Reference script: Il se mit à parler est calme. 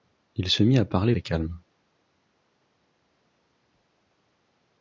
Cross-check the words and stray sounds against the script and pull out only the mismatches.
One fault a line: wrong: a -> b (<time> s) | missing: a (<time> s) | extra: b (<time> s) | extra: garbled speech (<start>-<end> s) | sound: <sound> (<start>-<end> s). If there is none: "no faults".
no faults